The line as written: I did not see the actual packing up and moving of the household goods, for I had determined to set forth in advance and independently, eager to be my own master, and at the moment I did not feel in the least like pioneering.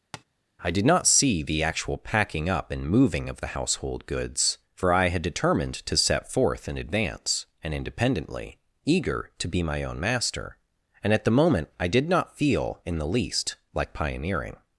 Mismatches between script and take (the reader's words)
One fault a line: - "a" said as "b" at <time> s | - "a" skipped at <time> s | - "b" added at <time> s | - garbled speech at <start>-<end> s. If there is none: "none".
none